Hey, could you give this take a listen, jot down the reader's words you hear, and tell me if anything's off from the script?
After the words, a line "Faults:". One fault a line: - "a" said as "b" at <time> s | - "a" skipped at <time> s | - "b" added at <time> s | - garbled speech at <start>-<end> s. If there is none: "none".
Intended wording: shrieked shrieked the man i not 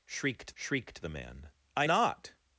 shrieked shrieked the man i not
Faults:
none